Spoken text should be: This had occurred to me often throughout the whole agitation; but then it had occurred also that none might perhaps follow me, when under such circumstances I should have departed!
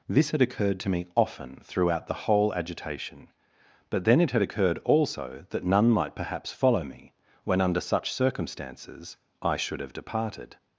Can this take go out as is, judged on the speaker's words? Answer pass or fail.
pass